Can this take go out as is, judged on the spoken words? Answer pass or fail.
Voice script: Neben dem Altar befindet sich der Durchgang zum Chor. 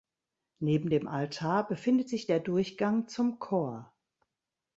pass